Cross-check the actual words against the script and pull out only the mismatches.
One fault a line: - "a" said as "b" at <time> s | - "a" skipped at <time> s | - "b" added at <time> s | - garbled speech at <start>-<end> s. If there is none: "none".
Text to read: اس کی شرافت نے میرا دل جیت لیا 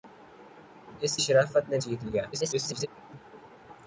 - "کی" skipped at 1.2 s
- "میرا دل" skipped at 1.8 s
- garbled speech at 2.3-2.9 s